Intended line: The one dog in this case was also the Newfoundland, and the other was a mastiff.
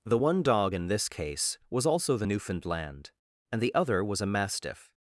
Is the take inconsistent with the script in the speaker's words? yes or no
no